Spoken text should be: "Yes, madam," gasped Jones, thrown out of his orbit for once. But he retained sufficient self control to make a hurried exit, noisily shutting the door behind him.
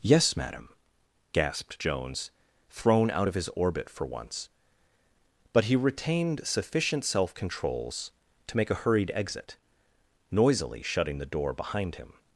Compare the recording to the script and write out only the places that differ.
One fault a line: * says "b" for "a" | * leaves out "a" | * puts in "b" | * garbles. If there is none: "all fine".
* says "controls" for "control"